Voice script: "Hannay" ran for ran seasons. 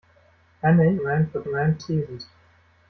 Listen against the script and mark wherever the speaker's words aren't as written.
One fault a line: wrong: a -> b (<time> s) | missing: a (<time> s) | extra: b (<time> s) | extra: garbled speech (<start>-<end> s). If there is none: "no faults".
no faults